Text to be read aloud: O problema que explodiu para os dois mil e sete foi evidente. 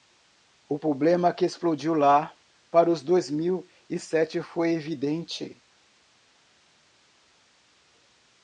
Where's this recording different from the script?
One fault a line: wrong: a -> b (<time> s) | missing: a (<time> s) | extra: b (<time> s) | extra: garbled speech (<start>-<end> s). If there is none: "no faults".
extra: lá (1.9 s)